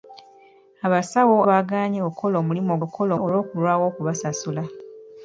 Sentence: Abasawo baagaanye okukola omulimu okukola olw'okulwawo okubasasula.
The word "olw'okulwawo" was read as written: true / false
true